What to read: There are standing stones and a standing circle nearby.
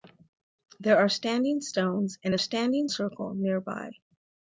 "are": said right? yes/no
yes